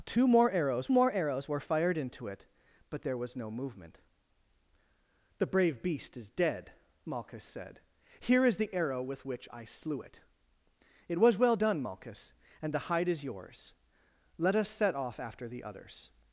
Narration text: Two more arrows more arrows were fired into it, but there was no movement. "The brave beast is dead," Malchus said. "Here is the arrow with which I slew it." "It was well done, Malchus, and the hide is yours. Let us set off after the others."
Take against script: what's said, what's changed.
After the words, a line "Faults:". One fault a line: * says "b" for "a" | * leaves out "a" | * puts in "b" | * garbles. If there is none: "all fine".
Two more arrows more arrows were fired into it, but there was no movement. "The brave beast is dead," Malchus said. "Here is the arrow with which I slew it." "It was well done, Malchus, and the hide is yours. Let us set off after the others."
Faults:
all fine